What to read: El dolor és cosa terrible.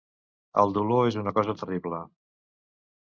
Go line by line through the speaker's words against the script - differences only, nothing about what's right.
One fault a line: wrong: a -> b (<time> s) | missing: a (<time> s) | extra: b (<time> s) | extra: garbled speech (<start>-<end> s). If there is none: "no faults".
extra: una (1.2 s)